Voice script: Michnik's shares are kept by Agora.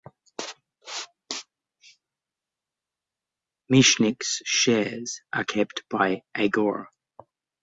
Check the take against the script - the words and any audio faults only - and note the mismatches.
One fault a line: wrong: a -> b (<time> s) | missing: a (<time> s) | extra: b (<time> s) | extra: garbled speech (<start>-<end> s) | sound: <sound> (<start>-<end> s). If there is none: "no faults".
no faults